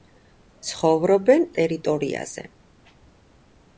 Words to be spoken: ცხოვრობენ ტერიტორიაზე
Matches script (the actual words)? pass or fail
pass